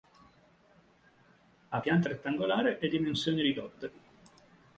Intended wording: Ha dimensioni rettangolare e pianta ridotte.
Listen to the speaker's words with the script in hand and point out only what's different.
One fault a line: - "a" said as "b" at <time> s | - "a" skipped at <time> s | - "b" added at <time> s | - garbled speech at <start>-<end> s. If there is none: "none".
- "dimensioni" said as "pianta" at 1.8 s
- "pianta" said as "dimensioni" at 2.9 s